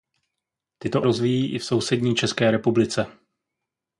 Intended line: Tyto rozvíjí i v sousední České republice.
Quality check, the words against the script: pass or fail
pass